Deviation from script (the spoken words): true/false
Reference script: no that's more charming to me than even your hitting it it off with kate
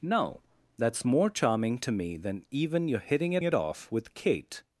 false